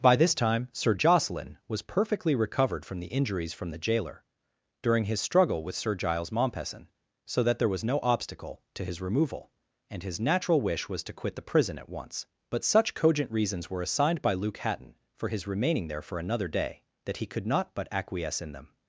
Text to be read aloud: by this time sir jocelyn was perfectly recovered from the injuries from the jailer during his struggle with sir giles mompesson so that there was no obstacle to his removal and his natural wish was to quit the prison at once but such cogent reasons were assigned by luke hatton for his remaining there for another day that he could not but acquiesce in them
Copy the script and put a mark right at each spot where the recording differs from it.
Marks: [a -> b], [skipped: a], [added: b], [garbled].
by this time sir jocelyn was perfectly recovered from the injuries from the jailer during his struggle with sir giles mompesson so that there was no obstacle to his removal and his natural wish was to quit the prison at once but such cogent reasons were assigned by luke hatton for his remaining there for another day that he could not but acquiesce in them